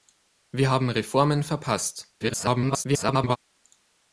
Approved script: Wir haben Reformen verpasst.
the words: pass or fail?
fail